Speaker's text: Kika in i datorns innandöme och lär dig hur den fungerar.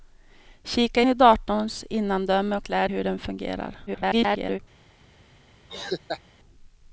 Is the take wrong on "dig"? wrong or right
wrong